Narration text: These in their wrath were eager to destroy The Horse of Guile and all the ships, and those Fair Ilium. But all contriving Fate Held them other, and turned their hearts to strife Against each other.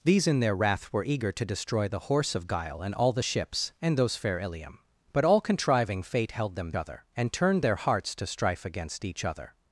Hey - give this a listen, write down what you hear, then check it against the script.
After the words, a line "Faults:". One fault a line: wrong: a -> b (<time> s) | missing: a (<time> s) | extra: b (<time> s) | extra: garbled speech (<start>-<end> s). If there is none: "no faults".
These in their wrath were eager to destroy The Horse of Guile and all the ships, and those Fair Ilium. But all contriving Fate Held them other, and turned their hearts to strife Against each other.
Faults:
no faults